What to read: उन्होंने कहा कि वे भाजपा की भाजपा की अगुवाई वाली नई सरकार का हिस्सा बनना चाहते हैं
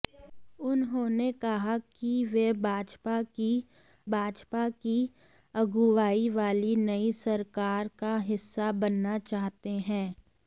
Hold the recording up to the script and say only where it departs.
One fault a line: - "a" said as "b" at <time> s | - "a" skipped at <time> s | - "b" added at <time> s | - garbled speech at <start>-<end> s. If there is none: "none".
none